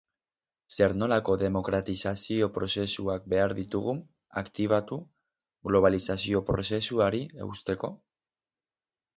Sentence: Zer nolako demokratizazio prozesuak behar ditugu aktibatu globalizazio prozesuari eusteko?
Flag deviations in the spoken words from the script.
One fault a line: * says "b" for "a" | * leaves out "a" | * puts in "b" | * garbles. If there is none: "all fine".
all fine